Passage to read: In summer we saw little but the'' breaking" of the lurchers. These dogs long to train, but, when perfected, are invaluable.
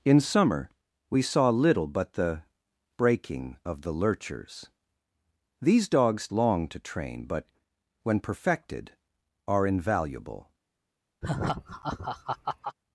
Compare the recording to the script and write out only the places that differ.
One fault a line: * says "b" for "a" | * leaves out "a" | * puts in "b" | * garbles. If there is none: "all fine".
all fine